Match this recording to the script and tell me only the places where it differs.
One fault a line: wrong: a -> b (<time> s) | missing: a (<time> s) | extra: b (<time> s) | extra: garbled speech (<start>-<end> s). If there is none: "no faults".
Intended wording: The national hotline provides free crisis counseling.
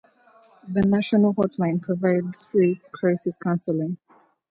no faults